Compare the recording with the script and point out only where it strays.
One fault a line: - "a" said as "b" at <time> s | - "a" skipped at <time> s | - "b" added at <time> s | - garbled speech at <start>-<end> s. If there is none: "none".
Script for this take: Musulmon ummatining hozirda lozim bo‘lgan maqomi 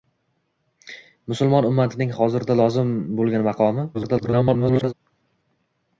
- garbled speech at 3.9-4.9 s